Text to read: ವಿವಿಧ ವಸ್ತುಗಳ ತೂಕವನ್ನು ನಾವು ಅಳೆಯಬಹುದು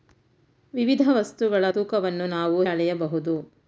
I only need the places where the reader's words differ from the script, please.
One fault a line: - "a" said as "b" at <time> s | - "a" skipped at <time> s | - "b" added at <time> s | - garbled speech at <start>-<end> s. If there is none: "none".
none